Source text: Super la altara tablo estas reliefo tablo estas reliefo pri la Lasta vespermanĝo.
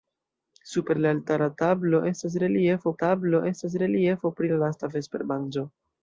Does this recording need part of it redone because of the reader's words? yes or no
no